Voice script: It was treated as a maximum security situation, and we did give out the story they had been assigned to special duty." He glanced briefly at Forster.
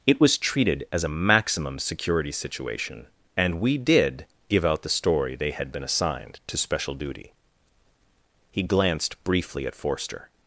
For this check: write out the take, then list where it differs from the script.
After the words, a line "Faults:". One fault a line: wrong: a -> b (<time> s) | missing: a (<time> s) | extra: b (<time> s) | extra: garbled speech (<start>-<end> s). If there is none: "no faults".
It was treated as a maximum security situation, and we did give out the story they had been assigned to special duty." He glanced briefly at Forster.
Faults:
no faults